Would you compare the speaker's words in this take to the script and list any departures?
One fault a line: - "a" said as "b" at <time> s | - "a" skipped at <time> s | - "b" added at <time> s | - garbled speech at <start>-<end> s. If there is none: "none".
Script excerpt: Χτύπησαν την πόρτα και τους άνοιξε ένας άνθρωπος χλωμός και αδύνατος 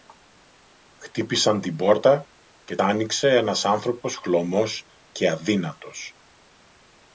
- "τους" skipped at 2.8 s